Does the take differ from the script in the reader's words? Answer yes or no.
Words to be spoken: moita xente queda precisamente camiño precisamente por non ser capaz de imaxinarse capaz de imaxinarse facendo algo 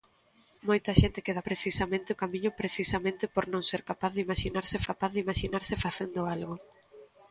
no